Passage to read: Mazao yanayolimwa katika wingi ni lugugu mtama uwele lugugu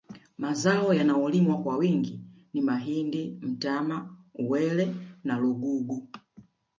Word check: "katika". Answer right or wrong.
wrong